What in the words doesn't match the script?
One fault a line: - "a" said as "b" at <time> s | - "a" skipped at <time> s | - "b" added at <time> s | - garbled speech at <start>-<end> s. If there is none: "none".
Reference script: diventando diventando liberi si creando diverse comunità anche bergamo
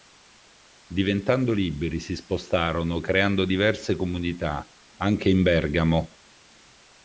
- "diventando" skipped at 1.5 s
- "spostarono" added at 2.1 s
- "in" added at 5.3 s